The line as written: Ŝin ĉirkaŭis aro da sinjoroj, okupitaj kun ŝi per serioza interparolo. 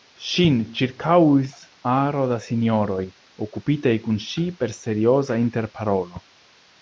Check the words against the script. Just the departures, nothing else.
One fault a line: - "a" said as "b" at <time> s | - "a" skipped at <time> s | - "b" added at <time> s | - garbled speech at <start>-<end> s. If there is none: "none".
none